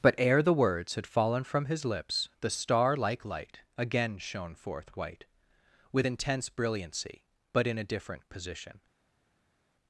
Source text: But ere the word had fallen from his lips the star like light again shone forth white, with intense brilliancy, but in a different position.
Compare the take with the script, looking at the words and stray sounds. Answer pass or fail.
fail